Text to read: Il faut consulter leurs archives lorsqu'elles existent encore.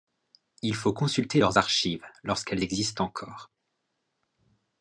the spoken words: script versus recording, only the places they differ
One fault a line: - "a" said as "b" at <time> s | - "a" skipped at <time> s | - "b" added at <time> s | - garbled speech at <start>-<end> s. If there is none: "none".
none